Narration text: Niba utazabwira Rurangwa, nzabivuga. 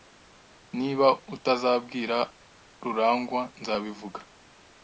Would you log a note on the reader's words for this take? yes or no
no